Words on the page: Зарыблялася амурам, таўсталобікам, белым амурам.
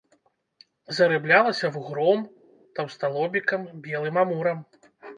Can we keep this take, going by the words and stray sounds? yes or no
no